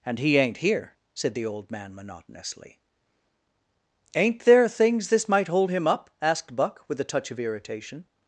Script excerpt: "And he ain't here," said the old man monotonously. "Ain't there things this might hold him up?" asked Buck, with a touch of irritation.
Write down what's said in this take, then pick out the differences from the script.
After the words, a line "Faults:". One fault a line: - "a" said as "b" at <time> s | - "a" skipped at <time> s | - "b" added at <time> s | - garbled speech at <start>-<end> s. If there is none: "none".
"And he ain't here," said the old man monotonously. "Ain't there things this might hold him up?" asked Buck, with a touch of irritation.
Faults:
none